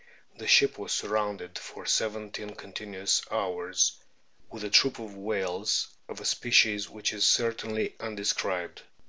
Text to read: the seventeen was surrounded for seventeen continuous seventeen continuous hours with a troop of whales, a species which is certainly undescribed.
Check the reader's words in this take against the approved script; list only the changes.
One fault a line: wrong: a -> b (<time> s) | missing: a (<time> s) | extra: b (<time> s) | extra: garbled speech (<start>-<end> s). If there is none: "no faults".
wrong: seventeen -> ship (0.5 s)
missing: seventeen continuous (3.2 s)
extra: of (6.1 s)